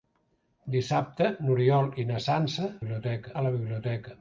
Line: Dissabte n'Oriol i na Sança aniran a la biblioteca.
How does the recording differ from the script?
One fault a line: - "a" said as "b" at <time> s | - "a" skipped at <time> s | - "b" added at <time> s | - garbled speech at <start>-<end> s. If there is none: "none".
- "aniran" said as "biblioteca" at 2.8 s